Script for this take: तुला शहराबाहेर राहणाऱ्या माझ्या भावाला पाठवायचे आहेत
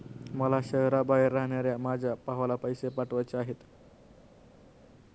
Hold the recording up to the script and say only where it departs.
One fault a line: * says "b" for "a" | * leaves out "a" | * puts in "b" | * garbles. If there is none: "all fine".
* says "मला" for "तुला"
* puts in "पैसे"